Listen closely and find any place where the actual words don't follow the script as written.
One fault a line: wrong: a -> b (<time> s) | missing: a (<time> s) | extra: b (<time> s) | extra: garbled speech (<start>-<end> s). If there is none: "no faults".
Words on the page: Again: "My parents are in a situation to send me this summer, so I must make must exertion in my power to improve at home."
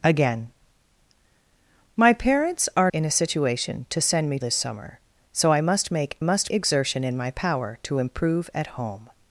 no faults